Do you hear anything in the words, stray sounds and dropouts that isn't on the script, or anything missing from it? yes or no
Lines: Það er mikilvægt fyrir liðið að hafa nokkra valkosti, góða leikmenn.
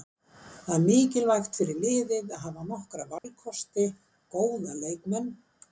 yes